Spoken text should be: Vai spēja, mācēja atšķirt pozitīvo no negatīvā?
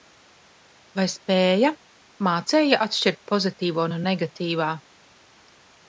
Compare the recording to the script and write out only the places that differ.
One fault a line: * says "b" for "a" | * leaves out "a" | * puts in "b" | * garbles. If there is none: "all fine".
all fine